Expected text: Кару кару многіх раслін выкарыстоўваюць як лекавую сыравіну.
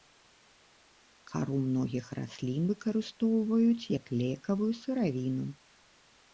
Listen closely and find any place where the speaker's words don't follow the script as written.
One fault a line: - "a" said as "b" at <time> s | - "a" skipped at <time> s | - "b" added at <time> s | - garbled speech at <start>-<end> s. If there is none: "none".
- "кару" skipped at 1.6 s